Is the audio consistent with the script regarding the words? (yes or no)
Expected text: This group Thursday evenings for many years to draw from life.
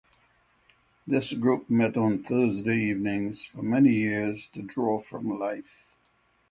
no